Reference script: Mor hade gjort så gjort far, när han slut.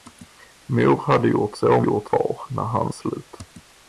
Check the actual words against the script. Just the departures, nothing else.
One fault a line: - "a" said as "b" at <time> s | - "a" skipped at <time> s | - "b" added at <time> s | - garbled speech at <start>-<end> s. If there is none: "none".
none